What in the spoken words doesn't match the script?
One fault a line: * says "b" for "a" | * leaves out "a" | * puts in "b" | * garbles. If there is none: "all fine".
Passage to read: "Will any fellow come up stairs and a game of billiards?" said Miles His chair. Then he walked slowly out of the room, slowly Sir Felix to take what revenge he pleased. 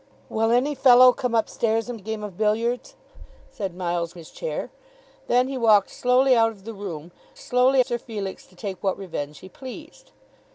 all fine